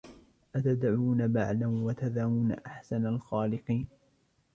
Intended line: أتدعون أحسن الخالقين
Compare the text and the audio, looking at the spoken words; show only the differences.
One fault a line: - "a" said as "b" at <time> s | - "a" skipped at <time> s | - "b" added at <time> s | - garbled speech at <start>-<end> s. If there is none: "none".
- "بعلا وتذرون" added at 1.3 s